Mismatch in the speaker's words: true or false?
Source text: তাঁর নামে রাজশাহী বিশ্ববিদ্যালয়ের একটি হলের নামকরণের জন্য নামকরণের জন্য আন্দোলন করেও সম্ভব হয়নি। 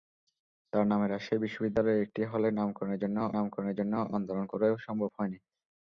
false